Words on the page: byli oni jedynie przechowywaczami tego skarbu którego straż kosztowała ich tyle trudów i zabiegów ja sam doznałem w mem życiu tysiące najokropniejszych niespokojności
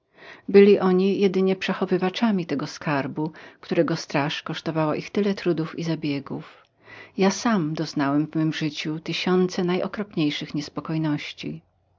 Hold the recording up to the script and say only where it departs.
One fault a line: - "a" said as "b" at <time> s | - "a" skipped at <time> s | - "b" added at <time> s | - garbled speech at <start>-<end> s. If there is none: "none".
none